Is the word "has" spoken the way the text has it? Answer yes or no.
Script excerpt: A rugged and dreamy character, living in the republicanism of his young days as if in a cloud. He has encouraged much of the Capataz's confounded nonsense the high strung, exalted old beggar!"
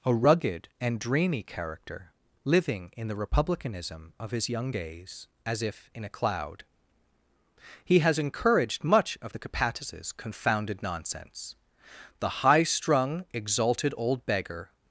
yes